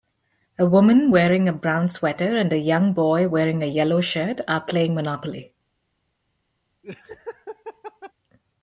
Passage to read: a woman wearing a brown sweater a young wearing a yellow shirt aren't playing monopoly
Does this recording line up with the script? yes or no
no